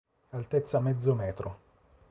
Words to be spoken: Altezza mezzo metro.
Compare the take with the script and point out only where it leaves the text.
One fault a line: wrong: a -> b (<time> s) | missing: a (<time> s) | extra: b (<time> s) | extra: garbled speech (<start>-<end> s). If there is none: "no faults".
no faults